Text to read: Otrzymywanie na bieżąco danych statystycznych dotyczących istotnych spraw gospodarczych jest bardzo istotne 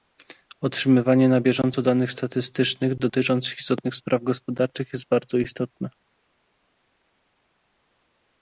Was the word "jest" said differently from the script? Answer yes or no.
no